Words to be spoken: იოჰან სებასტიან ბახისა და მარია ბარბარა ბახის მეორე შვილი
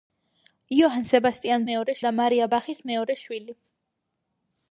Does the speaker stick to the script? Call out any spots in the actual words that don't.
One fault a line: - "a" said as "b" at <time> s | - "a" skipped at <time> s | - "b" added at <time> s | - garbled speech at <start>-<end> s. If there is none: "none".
- "ბახისა" said as "მეორე" at 1.7 s
- "ბარბარა" skipped at 2.5 s